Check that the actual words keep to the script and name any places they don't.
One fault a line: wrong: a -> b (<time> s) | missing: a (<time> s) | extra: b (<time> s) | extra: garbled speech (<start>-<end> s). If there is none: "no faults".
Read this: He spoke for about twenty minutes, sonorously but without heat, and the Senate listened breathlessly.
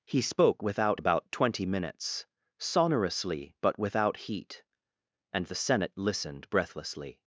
wrong: for -> without (0.6 s)